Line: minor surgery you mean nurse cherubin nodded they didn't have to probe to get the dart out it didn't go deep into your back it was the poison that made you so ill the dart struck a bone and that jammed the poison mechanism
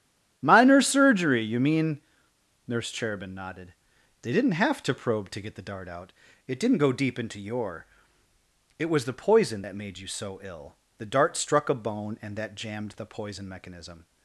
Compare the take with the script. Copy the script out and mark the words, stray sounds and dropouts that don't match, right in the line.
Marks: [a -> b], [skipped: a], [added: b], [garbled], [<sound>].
minor surgery you mean nurse cherubin nodded they didn't have to probe to get the dart out it didn't go deep into your [skipped: back] it was the poison that made you so ill the dart struck a bone and that jammed the poison mechanism